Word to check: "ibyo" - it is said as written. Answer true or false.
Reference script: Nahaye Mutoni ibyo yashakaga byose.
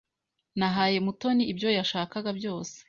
true